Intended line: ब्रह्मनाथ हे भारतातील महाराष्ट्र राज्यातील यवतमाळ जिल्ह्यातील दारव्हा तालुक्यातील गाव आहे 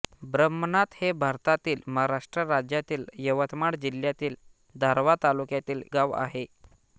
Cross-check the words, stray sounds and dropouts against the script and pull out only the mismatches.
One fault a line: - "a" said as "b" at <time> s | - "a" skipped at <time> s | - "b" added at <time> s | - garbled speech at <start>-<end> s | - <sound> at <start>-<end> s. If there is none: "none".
none